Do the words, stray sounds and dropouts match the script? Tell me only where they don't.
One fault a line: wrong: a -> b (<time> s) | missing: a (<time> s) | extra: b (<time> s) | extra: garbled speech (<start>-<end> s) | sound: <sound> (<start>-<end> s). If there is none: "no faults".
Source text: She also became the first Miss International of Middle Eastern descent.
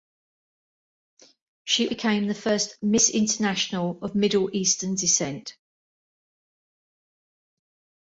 missing: also (1.9 s)